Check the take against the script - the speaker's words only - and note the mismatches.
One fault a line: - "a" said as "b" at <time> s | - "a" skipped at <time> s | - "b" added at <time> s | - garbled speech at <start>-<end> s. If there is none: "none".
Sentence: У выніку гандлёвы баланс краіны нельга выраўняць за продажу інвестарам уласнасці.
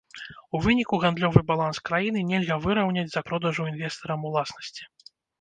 none